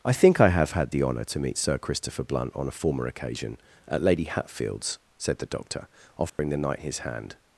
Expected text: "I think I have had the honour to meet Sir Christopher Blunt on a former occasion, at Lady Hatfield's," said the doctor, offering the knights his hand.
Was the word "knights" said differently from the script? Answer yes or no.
yes